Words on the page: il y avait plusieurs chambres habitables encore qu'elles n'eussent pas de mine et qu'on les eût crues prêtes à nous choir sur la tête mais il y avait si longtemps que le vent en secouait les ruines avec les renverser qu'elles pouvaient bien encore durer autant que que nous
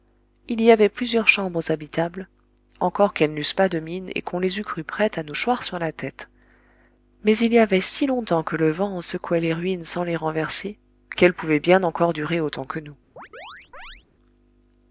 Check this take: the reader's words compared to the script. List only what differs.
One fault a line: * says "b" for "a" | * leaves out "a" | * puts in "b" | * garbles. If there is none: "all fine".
* says "sans" for "avec"
* leaves out "que"